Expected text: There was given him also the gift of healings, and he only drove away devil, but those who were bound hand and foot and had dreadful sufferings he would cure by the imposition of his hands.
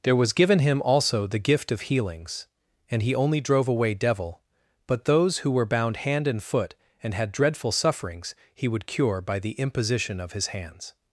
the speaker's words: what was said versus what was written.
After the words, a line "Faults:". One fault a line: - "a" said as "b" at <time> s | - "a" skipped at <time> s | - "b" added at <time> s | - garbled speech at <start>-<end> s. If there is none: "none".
There was given him also the gift of healings, and he only drove away devil, but those who were bound hand and foot and had dreadful sufferings he would cure by the imposition of his hands.
Faults:
none